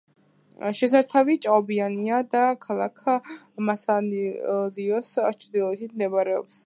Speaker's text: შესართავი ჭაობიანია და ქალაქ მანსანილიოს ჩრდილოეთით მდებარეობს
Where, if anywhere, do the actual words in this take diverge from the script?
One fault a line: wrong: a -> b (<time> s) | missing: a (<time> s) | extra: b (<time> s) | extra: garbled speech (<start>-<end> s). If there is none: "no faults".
no faults